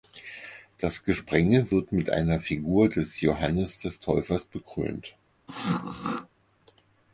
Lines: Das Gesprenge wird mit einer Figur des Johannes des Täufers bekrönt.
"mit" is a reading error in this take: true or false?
false